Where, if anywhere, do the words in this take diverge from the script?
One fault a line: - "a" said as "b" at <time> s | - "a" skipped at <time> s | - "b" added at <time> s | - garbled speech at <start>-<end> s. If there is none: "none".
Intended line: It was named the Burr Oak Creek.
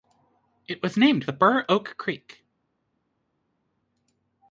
none